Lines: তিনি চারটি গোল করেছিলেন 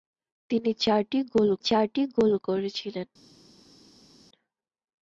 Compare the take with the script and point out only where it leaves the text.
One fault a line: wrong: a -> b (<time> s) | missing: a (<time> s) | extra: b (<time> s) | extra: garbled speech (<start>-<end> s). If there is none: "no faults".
extra: চারটি গোল (1.7 s)